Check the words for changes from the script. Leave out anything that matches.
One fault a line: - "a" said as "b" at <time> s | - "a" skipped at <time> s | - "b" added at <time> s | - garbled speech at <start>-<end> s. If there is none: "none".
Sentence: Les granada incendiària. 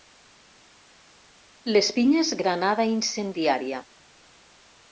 - "pinyes" added at 2.0 s